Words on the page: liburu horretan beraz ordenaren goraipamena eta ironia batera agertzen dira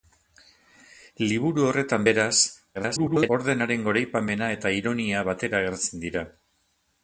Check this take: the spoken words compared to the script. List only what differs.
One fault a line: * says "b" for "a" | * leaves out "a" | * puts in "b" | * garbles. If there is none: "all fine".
* garbles